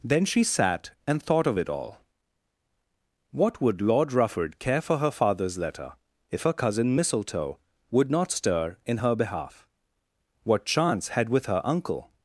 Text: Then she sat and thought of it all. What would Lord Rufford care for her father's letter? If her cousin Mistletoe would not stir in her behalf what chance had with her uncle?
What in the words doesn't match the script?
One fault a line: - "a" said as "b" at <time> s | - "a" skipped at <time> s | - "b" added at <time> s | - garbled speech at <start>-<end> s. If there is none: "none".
none